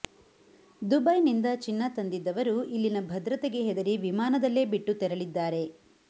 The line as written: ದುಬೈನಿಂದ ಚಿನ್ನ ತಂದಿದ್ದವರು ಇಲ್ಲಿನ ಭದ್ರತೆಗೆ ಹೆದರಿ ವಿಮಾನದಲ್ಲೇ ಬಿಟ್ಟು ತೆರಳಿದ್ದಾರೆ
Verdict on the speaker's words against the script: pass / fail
pass